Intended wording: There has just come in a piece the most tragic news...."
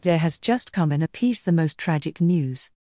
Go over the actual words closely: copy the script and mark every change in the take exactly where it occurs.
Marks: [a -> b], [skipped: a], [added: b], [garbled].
There has just come in a piece the most tragic news...."